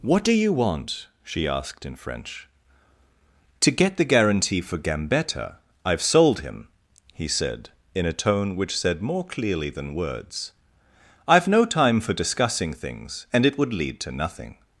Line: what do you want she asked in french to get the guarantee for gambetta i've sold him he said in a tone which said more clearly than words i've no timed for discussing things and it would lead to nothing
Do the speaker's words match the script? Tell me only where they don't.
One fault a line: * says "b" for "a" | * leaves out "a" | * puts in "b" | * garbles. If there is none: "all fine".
* says "time" for "timed"